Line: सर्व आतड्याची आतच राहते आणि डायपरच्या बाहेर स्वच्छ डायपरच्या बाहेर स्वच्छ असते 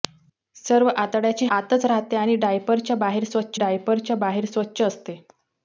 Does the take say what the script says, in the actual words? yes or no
yes